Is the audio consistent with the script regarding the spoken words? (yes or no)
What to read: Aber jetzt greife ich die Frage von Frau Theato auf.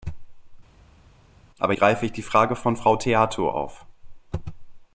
no